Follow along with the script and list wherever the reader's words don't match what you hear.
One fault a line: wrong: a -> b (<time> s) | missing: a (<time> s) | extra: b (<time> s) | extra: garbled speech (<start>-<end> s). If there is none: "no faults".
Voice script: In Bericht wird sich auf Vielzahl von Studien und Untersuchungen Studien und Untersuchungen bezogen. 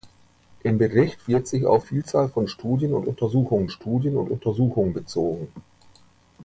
no faults